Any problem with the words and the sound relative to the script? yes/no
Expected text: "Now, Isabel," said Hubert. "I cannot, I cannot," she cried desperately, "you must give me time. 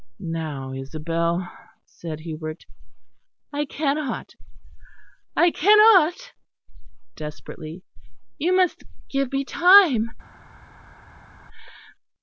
yes